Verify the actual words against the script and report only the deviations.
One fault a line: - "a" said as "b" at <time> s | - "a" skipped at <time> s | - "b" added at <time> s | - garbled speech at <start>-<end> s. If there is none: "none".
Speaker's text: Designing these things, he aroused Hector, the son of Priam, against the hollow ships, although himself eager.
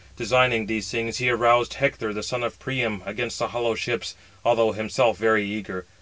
- "very" added at 5.2 s